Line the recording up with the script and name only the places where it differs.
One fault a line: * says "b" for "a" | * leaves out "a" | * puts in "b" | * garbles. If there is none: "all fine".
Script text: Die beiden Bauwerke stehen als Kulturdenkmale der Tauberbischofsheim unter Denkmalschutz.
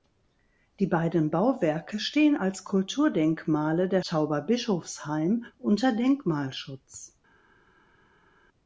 all fine